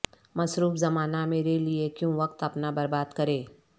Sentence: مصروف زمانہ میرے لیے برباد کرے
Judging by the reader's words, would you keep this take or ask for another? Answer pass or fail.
fail